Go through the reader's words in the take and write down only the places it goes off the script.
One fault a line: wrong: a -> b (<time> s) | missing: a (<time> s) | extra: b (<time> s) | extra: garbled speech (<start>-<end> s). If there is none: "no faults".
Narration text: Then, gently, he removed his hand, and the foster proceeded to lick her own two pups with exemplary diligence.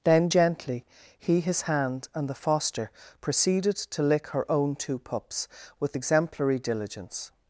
missing: removed (1.4 s)